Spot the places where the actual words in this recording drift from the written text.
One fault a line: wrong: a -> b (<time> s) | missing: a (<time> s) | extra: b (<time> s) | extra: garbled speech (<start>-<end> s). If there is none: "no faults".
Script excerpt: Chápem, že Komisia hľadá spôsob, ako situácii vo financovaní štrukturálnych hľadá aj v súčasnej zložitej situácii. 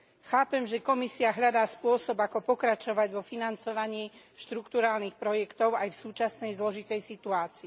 wrong: situácii -> pokračovať (2.5 s)
wrong: hľadá -> projektov (5.2 s)